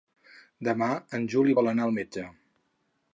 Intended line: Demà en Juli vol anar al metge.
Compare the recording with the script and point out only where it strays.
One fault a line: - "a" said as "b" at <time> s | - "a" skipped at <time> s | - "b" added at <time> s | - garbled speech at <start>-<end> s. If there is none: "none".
none